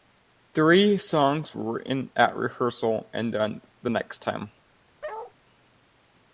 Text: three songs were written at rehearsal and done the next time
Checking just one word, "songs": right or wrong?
right